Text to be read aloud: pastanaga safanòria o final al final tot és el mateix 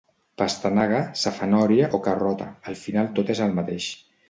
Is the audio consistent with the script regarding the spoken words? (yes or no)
no